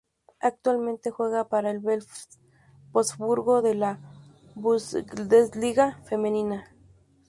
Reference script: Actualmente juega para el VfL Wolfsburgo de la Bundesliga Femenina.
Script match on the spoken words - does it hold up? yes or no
yes